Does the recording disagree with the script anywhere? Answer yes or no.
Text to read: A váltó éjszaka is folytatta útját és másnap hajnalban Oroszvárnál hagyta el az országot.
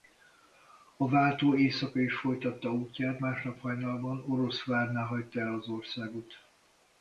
yes